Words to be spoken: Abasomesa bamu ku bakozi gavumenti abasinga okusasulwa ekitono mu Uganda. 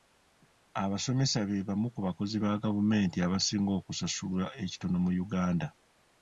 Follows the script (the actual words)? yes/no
no